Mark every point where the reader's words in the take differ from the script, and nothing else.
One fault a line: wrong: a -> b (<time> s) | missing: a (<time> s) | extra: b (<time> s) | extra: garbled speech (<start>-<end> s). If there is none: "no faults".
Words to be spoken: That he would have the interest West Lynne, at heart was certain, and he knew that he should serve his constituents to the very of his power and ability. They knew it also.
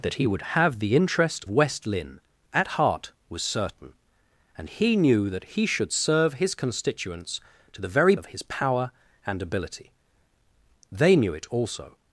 no faults